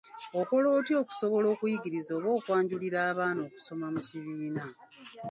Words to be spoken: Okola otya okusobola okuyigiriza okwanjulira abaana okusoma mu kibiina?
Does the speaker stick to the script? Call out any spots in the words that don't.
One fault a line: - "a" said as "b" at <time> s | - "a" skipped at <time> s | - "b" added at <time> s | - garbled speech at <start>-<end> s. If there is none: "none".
- "oba" added at 2.2 s